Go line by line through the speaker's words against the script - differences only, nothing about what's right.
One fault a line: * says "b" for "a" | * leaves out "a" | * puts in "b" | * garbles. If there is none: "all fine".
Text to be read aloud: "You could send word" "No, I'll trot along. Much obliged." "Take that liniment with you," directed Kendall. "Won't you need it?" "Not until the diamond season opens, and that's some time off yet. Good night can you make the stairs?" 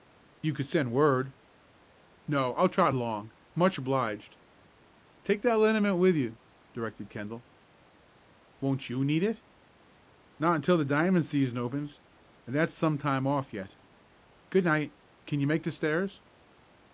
all fine